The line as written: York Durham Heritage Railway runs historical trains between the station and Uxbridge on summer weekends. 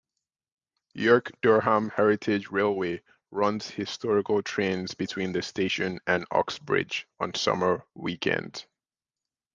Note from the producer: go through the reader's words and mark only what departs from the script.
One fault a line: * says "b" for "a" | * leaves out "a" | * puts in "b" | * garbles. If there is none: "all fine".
all fine